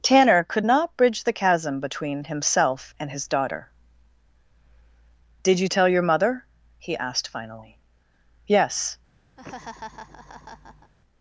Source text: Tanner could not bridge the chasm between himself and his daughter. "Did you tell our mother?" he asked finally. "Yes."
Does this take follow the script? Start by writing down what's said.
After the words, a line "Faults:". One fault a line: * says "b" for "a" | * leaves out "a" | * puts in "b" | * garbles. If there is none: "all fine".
Tanner could not bridge the chasm between himself and his daughter. "Did you tell your mother?" he asked finally. "Yes."
Faults:
* says "your" for "our"